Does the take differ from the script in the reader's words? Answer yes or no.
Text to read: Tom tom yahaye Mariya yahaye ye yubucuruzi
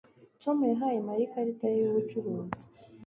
yes